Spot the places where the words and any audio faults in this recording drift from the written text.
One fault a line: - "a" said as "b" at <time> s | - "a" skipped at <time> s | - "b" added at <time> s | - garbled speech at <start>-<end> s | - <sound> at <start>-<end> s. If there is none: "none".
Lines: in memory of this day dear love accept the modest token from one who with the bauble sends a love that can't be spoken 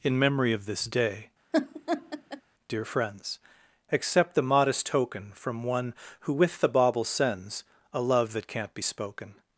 - laugh at 1.5-2.4 s
- "love" said as "friends" at 2.9 s